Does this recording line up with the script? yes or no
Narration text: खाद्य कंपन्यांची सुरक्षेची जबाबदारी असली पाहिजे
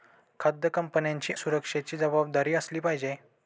yes